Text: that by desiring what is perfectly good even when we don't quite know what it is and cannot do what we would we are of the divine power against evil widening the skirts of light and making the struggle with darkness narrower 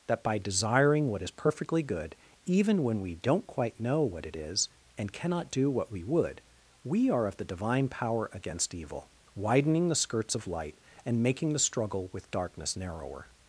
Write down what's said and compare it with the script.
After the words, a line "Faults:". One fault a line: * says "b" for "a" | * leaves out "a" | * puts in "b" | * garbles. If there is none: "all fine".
that by desiring what is perfectly good even when we don't quite know what it is and cannot do what we would we are of the divine power against evil widening the skirts of light and making the struggle with darkness narrower
Faults:
all fine